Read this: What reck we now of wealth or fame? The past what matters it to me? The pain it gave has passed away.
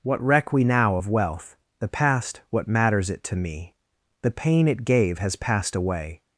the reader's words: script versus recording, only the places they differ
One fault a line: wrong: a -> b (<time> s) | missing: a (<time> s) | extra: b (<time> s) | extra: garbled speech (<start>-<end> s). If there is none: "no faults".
missing: or fame (1.6 s)